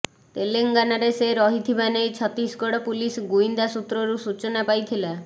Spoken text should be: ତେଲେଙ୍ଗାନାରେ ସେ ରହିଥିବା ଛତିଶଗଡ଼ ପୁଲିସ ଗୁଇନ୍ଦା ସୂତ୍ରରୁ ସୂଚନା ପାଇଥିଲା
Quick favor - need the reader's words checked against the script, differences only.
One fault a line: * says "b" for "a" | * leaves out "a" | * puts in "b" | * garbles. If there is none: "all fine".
* puts in "ନେଇ"